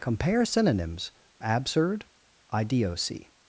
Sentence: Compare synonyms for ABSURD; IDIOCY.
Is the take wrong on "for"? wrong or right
wrong